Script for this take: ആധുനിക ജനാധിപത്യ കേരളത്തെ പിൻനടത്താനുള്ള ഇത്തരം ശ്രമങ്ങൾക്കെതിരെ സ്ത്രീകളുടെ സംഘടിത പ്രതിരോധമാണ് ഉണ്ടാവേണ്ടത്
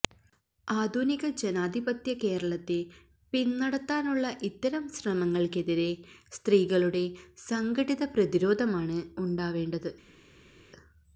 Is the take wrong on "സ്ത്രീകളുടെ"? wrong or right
right